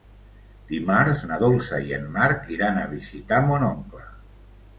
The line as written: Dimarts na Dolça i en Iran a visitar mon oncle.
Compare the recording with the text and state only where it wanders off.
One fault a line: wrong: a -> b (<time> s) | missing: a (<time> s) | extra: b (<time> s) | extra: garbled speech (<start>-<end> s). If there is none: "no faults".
extra: Marc (2.2 s)